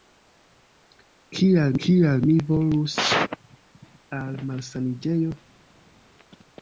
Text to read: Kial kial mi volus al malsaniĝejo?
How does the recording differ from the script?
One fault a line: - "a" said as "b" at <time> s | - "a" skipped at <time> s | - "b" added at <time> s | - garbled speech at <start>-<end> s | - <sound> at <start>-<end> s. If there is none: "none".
none